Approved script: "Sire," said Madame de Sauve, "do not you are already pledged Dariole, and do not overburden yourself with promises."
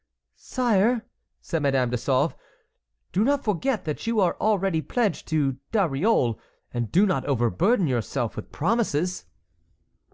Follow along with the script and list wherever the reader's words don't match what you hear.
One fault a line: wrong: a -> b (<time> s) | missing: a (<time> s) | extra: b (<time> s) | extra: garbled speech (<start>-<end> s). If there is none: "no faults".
extra: forget that (3.4 s)
extra: to (5.3 s)